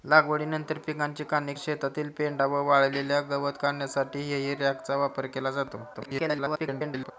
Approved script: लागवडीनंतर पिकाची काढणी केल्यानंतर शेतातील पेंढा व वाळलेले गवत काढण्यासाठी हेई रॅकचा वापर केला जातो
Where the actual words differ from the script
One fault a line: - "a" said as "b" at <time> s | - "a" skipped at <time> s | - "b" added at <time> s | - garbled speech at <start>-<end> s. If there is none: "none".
- "केल्यानंतर" skipped at 1.5 s
- garbled speech at 5.9-7.1 s